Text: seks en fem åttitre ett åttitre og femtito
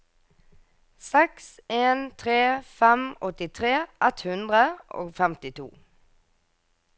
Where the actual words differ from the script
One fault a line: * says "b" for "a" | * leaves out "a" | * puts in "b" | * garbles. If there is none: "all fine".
* puts in "tre"
* says "hundre" for "åttitre"